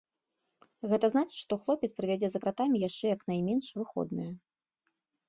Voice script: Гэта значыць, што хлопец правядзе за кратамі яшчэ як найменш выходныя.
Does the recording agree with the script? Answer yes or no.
yes